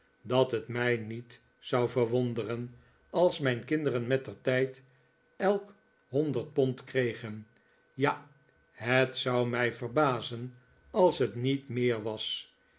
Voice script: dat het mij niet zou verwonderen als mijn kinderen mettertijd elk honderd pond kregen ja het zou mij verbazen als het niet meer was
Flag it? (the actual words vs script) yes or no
no